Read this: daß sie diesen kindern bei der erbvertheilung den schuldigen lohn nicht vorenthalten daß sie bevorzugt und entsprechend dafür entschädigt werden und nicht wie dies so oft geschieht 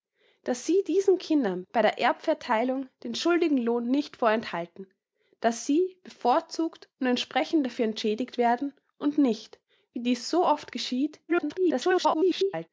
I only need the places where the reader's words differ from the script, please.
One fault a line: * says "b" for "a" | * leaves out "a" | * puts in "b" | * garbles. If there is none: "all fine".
* garbles